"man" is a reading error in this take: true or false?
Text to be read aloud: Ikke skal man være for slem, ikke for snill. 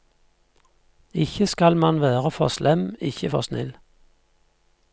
false